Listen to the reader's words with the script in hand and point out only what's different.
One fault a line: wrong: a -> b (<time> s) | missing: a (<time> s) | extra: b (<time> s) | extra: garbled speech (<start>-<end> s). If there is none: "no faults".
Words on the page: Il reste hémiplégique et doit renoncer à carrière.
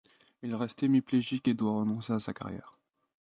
extra: sa (2.2 s)